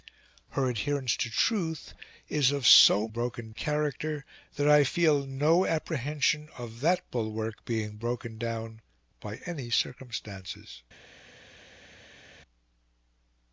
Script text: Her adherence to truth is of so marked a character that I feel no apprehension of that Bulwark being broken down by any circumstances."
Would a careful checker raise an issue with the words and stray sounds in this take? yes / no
yes